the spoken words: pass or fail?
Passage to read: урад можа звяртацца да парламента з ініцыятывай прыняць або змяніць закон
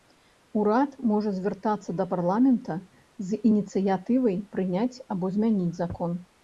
pass